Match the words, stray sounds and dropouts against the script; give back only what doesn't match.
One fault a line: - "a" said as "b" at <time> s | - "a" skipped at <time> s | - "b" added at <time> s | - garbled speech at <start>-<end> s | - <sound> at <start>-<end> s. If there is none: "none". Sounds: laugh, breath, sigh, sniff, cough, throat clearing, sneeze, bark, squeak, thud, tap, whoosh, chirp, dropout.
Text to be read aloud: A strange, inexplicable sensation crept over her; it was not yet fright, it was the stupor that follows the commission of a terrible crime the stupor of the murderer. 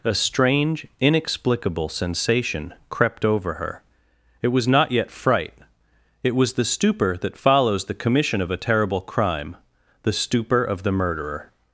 none